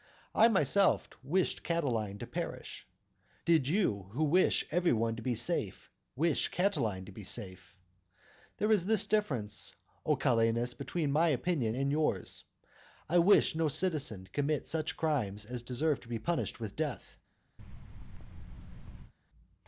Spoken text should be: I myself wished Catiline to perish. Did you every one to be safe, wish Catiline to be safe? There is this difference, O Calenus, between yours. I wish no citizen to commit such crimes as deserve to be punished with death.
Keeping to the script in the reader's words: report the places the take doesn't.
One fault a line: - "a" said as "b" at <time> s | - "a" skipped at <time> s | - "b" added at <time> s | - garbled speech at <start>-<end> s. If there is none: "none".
- "who wish" added at 4.1 s
- "my opinion and" added at 11.1 s